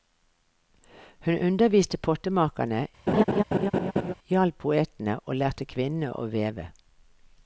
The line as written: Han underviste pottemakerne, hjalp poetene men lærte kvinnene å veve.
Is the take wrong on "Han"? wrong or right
wrong